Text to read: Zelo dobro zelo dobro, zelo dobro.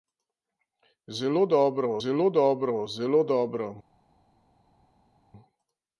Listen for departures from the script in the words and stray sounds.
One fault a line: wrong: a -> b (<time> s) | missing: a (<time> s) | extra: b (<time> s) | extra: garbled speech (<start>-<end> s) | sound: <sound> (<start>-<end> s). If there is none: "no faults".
no faults